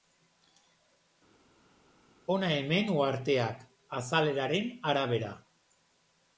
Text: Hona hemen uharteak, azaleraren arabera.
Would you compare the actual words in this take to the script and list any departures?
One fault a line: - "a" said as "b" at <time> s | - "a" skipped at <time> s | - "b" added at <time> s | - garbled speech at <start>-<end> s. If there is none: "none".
none